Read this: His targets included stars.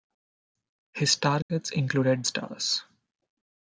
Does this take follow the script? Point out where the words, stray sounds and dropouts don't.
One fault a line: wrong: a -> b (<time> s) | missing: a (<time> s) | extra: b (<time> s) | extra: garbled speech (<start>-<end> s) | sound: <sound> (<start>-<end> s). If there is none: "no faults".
sound: dropout (1.4-1.5 s)